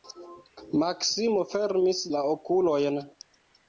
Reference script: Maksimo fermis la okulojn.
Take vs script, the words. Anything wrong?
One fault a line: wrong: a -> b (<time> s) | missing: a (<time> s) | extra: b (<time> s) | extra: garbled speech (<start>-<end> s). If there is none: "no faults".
no faults